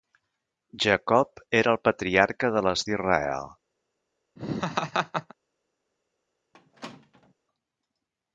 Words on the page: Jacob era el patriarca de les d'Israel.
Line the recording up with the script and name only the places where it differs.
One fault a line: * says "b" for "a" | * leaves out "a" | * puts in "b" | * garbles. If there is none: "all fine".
all fine